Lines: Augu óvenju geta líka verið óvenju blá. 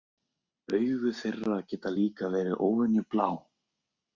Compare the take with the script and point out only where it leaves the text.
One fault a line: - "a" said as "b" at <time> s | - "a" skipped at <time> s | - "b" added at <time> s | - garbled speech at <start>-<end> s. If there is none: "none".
- "óvenju" said as "þeirra" at 1.2 s